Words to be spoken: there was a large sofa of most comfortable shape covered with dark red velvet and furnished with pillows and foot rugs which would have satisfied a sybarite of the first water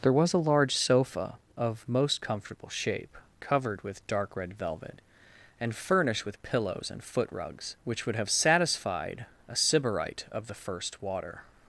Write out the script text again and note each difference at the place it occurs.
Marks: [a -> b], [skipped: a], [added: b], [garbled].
there was a large sofa of most comfortable shape covered with dark red velvet and furnished with pillows and foot rugs which would have satisfied a sybarite of the first water